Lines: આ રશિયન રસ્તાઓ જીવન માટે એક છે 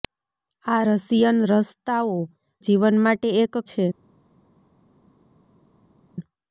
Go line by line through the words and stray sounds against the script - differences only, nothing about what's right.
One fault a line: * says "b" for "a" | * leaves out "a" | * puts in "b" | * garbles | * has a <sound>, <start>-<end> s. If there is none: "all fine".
all fine